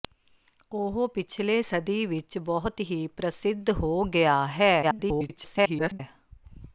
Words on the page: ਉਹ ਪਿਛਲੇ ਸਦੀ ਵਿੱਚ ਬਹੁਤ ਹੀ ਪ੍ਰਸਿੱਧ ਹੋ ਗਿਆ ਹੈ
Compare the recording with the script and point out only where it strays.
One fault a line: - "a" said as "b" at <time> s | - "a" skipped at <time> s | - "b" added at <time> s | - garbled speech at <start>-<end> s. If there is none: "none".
- garbled speech at 4.8-6.0 s